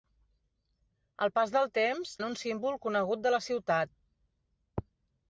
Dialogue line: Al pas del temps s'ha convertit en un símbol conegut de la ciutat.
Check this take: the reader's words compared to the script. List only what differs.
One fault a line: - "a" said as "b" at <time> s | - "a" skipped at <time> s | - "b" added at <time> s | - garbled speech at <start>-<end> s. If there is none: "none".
- "s'ha convertit" skipped at 2.1 s